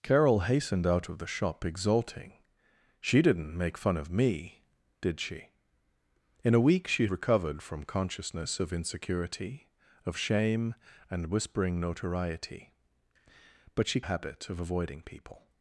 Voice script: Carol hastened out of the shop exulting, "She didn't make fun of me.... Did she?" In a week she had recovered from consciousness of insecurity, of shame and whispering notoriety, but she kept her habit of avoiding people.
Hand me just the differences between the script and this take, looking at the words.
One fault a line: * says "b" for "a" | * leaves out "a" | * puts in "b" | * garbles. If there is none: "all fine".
* leaves out "had"
* leaves out "kept her"